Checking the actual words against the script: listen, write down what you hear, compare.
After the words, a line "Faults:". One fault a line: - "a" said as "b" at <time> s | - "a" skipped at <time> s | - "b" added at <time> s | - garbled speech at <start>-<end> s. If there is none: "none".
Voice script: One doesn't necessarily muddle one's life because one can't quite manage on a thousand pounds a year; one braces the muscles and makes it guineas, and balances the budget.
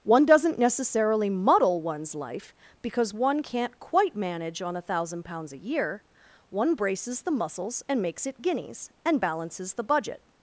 One doesn't necessarily muddle one's life because one can't quite manage on a thousand pounds a year; one braces the muscles and makes it guineas, and balances the budget.
Faults:
none